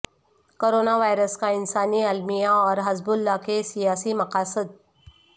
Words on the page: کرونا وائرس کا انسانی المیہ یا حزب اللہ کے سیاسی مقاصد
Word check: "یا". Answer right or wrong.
wrong